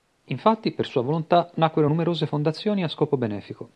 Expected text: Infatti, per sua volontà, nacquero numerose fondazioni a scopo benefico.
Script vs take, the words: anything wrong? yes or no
no